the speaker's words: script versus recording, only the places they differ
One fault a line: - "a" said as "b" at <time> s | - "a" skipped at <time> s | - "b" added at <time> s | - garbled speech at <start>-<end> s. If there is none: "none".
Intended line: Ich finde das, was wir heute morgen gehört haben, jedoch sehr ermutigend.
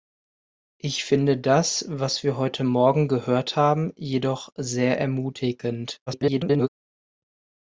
- garbled speech at 6.1-6.7 s